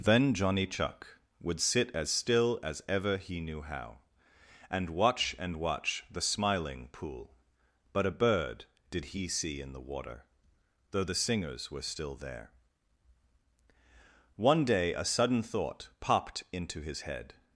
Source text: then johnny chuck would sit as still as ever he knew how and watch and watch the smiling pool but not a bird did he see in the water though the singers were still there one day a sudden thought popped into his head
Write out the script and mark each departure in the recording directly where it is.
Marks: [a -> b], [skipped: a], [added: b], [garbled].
then johnny chuck would sit as still as ever he knew how and watch and watch the smiling pool but [skipped: not] a bird did he see in the water though the singers were still there one day a sudden thought popped into his head